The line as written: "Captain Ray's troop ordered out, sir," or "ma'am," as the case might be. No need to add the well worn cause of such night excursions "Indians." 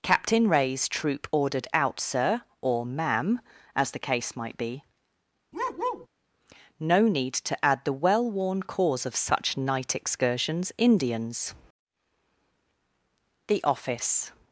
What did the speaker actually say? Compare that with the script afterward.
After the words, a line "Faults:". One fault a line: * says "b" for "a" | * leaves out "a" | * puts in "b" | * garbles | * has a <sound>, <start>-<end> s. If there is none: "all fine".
"Captain Ray's troop ordered out, sir," or "ma'am," as the case might be. No need to add the well worn cause of such night excursions "Indians." The office
Faults:
* has a bark, 5.5-6.1 s
* puts in "The office"